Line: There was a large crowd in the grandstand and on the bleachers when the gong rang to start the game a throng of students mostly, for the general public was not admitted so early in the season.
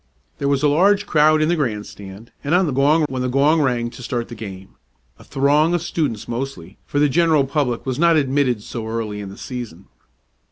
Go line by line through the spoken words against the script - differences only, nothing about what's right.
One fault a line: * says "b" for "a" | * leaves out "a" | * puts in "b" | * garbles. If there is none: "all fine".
* says "gong" for "bleachers"